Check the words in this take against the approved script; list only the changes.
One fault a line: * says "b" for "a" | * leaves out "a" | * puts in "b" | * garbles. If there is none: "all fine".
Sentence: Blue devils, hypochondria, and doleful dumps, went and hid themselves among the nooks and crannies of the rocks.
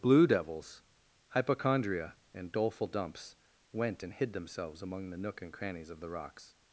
* says "nook" for "nooks"